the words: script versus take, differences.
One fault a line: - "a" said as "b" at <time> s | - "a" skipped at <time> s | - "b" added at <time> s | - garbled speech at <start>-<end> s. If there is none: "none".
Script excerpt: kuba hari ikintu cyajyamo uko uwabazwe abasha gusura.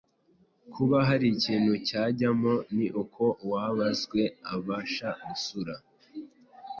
- "ni" added at 2.8 s